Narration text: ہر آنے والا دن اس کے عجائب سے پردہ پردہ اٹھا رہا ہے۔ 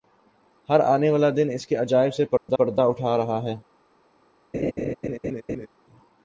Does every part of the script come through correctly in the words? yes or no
yes